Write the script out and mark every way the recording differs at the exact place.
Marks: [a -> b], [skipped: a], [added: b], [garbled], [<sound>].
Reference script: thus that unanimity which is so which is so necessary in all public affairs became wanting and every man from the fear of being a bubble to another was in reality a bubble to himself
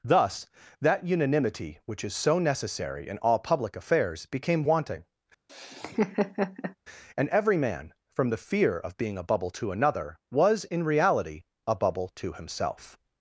thus that unanimity which is so [skipped: which is so] necessary in all public affairs became wanting [laugh] and every man from the fear of being a bubble to another was in reality a bubble to himself